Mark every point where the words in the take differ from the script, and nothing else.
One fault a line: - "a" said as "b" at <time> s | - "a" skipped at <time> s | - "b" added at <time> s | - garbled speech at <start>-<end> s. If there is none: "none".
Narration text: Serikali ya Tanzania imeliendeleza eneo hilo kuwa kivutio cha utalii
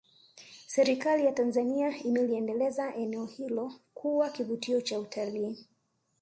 none